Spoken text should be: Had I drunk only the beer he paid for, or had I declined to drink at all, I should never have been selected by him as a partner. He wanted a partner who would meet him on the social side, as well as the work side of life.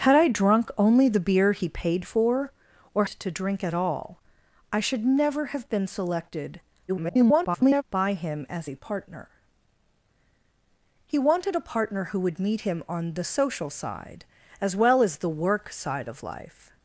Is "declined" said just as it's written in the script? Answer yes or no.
no